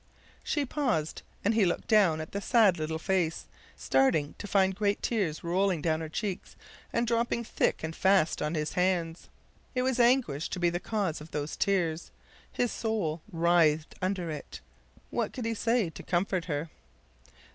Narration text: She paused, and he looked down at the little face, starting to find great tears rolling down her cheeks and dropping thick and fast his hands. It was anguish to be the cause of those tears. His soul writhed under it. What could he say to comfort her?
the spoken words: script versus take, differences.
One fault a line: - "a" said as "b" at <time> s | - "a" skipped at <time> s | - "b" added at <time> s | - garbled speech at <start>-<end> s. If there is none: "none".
- "sad" added at 2.4 s
- "on" added at 8.4 s